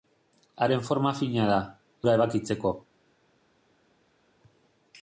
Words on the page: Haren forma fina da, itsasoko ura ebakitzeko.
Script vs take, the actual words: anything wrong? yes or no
yes